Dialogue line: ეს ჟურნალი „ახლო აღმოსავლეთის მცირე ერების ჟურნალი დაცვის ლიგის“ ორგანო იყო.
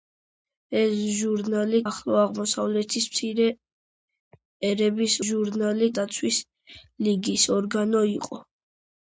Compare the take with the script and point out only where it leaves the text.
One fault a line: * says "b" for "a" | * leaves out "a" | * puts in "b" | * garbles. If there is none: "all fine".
all fine